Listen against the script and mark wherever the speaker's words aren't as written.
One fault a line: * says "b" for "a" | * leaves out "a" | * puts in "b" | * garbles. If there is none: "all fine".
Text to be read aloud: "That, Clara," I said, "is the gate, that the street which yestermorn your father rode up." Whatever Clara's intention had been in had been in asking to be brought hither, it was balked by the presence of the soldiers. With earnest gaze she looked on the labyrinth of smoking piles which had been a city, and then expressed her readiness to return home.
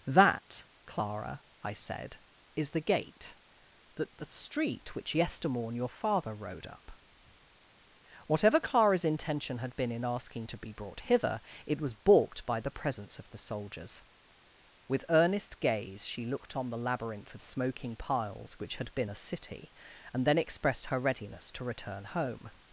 * leaves out "had been in"